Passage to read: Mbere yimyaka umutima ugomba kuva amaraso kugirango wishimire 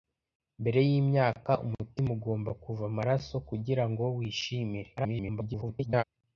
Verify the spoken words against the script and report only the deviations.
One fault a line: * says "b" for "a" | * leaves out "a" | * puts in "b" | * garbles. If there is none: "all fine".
* garbles